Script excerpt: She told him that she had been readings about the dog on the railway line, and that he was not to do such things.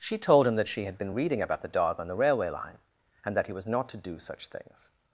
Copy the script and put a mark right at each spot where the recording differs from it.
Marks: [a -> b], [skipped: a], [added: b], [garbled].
She told him that she had been [readings -> reading] about the dog on the railway line, and that he was not to do such things.